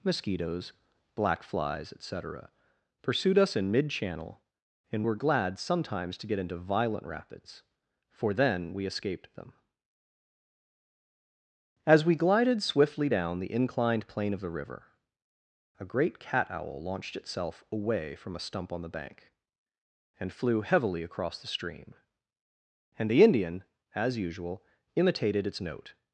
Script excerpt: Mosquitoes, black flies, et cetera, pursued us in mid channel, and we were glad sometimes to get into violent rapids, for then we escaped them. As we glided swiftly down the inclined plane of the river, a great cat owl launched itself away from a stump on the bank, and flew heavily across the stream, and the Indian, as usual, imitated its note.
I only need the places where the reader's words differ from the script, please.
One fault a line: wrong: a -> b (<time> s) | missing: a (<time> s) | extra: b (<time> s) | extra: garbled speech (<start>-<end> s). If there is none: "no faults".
missing: we (5.0 s)